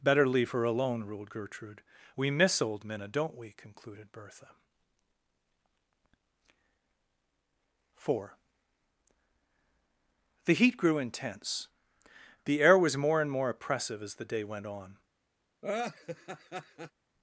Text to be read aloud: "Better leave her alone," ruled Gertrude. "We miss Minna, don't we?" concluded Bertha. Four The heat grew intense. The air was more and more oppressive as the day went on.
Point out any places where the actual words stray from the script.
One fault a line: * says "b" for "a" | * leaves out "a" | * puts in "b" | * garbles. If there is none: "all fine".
* puts in "old"